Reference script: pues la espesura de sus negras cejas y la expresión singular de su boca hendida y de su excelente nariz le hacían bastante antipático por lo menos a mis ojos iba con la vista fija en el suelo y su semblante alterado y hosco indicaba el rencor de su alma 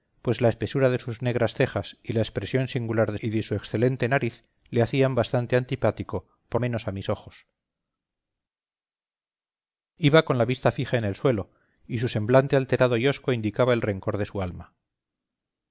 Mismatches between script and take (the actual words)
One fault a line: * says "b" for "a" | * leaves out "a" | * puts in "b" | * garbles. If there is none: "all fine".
* leaves out "su boca hendida"
* leaves out "lo"